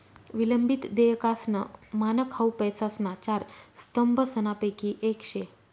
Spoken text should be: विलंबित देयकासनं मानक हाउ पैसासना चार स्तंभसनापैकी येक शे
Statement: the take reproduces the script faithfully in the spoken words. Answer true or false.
true